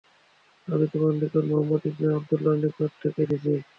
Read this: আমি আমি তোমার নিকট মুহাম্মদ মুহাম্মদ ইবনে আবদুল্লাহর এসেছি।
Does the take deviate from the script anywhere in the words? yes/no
yes